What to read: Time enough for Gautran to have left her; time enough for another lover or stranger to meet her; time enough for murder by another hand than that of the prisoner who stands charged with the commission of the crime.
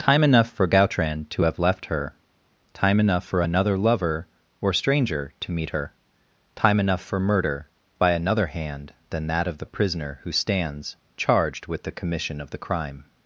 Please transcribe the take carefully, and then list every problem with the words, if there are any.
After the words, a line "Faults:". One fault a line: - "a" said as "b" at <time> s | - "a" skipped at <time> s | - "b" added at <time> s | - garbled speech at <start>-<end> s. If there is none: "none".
Time enough for Gautran to have left her; time enough for another lover or stranger to meet her; time enough for murder by another hand than that of the prisoner who stands charged with the commission of the crime.
Faults:
none